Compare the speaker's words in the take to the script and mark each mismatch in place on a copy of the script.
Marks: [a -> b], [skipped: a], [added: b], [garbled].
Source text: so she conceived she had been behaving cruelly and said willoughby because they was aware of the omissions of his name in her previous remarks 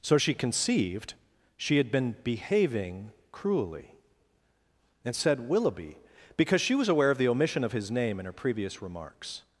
so she conceived she had been behaving cruelly and said willoughby because [they -> she] was aware of the [omissions -> omission] of his name in her previous remarks